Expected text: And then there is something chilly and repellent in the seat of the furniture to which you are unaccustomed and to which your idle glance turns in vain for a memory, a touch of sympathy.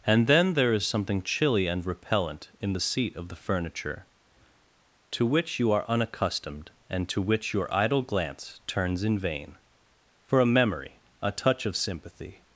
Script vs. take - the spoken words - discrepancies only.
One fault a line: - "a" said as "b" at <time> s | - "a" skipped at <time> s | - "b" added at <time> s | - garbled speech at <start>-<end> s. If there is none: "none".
none